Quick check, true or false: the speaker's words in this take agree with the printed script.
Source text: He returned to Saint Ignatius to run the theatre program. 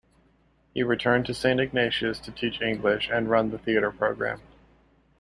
false